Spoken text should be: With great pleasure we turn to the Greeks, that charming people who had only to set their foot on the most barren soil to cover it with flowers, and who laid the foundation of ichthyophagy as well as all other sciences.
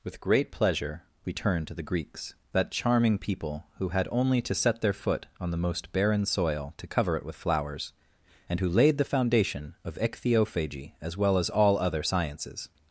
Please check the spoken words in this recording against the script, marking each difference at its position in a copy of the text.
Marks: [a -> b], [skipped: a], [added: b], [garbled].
With great pleasure we turn to the Greeks, that charming people who had only to set their foot on the most barren soil to cover it with flowers, and who laid the foundation of ichthyophagy as well as all other sciences.